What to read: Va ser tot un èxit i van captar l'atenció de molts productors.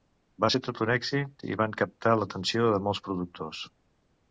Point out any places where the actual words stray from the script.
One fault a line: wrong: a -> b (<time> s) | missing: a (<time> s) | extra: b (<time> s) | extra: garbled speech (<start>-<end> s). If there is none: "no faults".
no faults